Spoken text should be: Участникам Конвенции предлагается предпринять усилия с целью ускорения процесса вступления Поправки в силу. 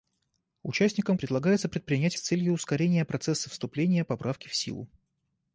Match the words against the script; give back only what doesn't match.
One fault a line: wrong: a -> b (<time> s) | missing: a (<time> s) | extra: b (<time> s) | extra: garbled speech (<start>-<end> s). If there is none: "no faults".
missing: Конвенции (1.1 s)
missing: усилия (2.2 s)